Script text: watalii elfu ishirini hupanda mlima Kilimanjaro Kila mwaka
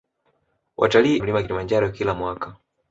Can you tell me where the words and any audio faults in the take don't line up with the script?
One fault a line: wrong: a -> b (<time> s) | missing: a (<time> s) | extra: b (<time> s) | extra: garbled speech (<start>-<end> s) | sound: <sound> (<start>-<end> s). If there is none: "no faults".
missing: elfu ishirini hupanda (1.2 s)